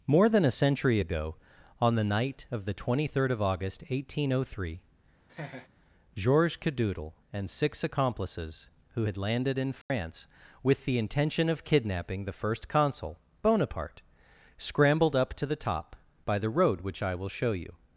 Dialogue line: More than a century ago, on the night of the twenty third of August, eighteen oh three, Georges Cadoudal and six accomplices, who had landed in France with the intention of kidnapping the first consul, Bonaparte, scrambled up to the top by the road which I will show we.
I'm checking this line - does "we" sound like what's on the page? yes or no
no